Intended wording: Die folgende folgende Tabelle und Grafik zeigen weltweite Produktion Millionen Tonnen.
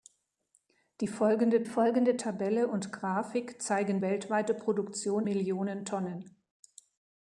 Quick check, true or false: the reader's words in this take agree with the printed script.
true